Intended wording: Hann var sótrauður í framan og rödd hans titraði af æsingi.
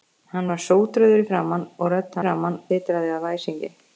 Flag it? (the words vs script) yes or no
yes